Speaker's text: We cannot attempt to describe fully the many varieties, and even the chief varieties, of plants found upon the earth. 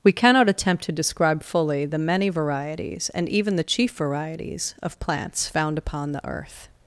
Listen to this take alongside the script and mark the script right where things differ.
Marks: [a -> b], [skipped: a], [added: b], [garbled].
We cannot attempt to describe fully the many varieties, and even the chief varieties, of plants found upon the earth.